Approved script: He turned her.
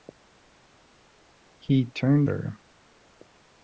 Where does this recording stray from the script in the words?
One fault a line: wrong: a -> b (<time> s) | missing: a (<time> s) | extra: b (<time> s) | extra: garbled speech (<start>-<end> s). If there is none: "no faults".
no faults